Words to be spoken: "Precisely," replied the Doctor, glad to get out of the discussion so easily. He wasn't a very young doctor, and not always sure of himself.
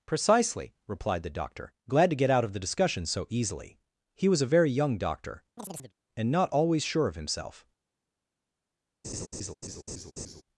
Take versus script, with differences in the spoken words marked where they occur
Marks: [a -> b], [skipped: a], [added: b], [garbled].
"Precisely," replied the Doctor, glad to get out of the discussion so easily. He [wasn't -> was] a very young doctor, and not always sure of himself.